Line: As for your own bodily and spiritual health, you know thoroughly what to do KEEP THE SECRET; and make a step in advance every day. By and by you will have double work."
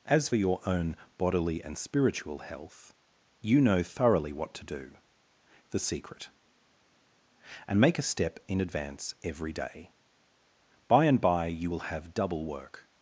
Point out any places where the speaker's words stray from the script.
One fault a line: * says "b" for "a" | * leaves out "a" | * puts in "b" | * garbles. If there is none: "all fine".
* leaves out "for"
* leaves out "KEEP"